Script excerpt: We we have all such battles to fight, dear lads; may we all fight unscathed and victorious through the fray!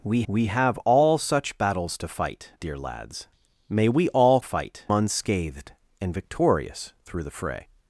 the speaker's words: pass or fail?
pass